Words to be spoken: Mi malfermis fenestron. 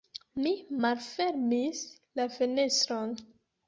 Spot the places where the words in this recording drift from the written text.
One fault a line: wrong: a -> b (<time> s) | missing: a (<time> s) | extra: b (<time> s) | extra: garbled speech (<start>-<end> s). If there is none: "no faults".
extra: la (2.2 s)